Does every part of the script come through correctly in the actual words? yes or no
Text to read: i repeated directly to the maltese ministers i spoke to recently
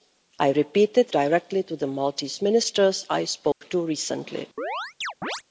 yes